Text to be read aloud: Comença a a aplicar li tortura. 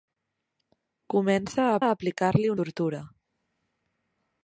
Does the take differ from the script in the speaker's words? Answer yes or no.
no